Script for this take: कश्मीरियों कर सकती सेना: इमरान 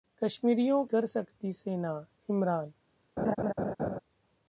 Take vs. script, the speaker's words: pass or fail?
pass